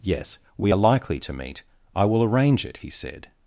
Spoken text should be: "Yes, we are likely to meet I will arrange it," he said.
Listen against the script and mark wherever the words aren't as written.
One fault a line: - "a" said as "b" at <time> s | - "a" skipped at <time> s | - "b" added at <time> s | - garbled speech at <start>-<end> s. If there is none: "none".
none